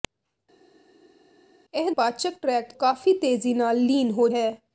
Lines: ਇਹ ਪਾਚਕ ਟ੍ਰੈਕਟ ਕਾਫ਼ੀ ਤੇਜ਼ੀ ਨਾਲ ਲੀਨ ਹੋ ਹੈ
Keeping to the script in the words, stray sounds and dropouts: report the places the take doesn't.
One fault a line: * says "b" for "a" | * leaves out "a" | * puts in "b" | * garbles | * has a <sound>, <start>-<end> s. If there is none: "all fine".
all fine